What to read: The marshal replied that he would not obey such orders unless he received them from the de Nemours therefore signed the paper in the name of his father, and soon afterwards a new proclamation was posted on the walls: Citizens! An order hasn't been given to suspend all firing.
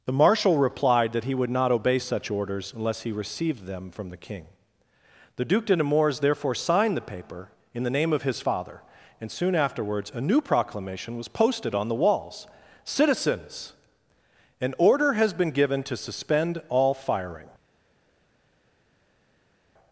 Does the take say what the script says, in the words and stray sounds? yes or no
no